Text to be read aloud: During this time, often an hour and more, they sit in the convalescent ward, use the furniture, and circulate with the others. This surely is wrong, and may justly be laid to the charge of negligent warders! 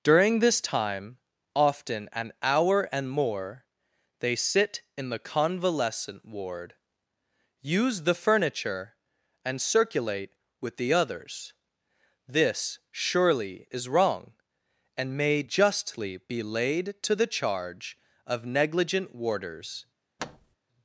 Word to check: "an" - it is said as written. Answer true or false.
true